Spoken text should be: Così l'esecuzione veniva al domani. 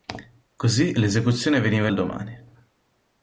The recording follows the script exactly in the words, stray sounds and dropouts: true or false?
true